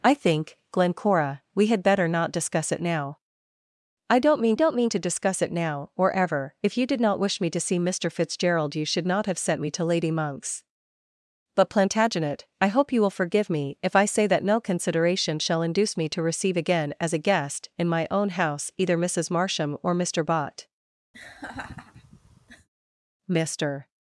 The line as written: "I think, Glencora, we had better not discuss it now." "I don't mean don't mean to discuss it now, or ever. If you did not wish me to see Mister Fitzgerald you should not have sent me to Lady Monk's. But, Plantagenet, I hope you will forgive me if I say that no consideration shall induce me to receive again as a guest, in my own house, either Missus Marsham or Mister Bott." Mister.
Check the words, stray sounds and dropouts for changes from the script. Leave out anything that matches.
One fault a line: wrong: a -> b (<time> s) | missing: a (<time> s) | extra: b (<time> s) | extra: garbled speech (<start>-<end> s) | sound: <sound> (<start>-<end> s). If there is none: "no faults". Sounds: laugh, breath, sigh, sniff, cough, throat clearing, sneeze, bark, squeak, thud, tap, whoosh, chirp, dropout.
sound: laugh (21.1-22.7 s)